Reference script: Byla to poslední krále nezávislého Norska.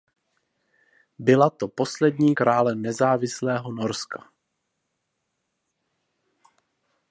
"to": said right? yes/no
yes